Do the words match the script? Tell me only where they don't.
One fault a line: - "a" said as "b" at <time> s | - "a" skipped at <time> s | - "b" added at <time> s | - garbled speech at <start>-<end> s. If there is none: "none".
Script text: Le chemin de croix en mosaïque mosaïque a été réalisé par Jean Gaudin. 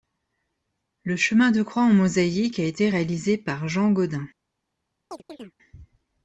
- "mosaïque" skipped at 2.6 s